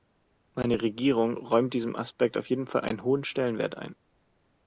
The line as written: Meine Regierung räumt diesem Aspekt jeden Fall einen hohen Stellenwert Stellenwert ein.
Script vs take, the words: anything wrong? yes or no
yes